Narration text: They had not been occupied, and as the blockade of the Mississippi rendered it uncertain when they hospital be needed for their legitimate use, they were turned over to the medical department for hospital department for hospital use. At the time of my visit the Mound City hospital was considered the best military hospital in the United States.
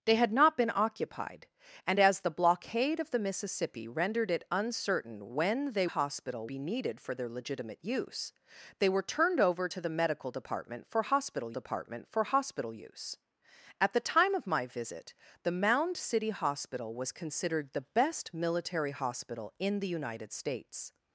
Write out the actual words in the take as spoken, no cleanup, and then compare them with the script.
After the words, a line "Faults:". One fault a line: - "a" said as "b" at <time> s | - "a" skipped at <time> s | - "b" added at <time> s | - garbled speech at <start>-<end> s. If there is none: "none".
They had not been occupied, and as the blockade of the Mississippi rendered it uncertain when they hospital be needed for their legitimate use, they were turned over to the medical department for hospital department for hospital use. At the time of my visit the Mound City hospital was considered the best military hospital in the United States.
Faults:
none